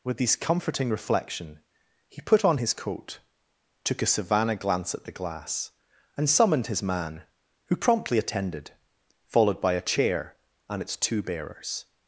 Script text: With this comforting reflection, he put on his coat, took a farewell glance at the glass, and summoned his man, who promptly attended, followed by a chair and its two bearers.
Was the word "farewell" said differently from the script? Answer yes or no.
yes